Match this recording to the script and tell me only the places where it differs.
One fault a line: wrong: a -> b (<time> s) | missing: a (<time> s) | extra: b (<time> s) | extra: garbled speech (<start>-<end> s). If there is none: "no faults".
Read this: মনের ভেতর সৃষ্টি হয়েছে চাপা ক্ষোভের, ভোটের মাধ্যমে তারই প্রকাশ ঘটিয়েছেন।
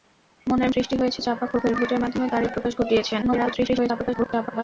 missing: ভেতর (0.7 s)
extra: garbled speech (3.2-4.6 s)